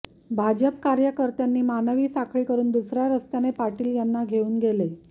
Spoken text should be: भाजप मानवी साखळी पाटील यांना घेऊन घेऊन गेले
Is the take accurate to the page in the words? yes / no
no